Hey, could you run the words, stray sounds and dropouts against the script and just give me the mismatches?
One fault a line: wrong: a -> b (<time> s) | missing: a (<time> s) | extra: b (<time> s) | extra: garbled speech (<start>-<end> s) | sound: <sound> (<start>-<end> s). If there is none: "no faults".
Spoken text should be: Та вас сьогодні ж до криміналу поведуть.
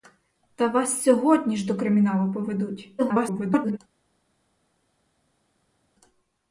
extra: garbled speech (3.0-3.8 s)